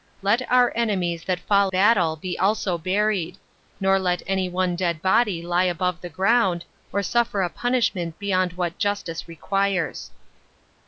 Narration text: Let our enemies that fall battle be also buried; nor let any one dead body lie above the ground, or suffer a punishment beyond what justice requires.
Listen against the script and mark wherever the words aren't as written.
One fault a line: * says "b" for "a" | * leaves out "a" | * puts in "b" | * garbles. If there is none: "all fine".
all fine